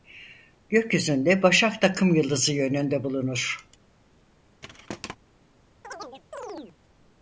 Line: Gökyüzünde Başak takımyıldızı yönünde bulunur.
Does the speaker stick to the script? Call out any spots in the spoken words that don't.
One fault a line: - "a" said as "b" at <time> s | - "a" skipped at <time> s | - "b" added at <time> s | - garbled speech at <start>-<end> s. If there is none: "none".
none